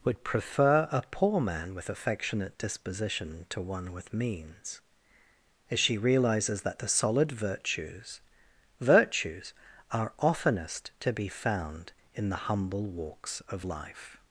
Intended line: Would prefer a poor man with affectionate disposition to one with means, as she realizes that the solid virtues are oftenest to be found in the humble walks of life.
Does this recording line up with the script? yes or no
no